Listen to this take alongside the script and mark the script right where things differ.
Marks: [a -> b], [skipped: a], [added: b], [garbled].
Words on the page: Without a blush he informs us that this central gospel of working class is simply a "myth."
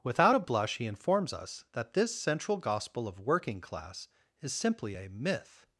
Without a blush he informs us that this central gospel of working class is simply a "myth."